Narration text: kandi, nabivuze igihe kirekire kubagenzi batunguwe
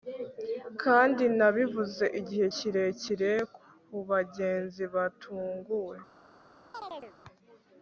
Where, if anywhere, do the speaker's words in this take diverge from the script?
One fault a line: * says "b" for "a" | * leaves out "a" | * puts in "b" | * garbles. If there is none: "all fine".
all fine